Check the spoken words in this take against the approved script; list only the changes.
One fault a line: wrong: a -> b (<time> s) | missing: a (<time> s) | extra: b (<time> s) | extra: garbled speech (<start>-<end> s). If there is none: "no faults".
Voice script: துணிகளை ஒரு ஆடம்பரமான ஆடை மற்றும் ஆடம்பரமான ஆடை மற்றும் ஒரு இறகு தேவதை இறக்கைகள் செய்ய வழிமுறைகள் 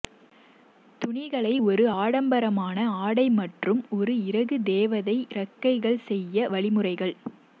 missing: ஆடம்பரமான ஆடை மற்றும் (3.8 s)